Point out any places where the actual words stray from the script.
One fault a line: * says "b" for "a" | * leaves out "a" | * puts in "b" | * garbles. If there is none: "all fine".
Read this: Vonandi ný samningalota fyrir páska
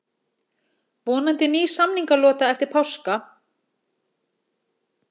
* says "eftir" for "fyrir"